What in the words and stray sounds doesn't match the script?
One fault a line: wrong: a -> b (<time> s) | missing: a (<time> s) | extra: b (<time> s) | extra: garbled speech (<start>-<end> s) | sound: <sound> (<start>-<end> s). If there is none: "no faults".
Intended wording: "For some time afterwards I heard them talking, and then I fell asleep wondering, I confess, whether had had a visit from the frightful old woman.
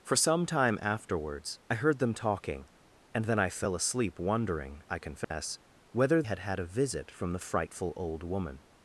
sound: dropout (5.2-5.3 s)